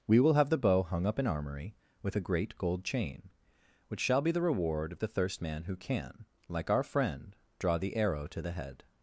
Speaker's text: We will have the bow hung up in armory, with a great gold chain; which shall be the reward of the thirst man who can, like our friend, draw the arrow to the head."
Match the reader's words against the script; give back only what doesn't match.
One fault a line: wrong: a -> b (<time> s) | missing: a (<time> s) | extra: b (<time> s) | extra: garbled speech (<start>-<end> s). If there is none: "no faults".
no faults